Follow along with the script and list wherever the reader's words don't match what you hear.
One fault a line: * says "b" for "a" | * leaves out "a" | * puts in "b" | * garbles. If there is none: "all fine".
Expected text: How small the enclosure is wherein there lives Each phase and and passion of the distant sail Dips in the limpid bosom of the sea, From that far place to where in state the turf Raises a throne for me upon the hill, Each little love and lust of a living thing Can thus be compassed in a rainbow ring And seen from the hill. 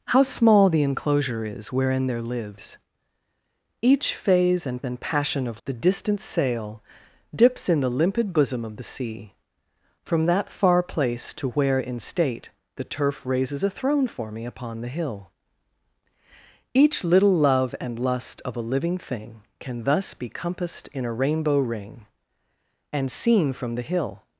all fine